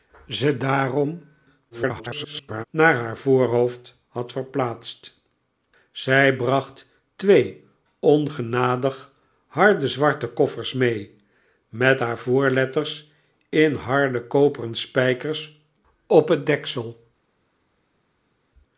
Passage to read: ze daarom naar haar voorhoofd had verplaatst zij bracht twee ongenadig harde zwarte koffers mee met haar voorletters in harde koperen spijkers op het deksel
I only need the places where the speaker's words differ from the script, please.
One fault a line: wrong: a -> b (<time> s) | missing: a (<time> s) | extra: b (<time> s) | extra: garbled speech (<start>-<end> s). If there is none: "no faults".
extra: garbled speech (1.7-2.6 s)